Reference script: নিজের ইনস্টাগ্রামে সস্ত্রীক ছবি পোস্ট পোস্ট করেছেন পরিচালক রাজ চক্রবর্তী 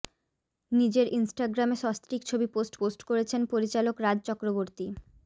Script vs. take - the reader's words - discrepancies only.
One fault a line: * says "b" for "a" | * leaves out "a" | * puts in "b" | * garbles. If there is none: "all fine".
all fine